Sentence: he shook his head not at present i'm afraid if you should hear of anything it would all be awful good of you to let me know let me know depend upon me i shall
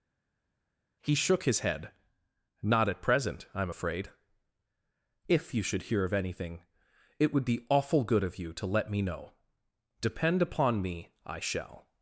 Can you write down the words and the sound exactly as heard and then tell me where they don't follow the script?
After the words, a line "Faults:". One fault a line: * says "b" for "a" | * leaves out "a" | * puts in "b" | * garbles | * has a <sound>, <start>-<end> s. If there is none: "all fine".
he shook his head not at present i'm afraid if you should hear of anything it would be awful good of you to let me know depend upon me i shall
Faults:
* leaves out "all"
* leaves out "let me know"